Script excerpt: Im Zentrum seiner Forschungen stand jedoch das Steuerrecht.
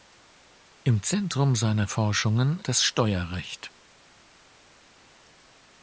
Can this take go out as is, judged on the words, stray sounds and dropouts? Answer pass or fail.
fail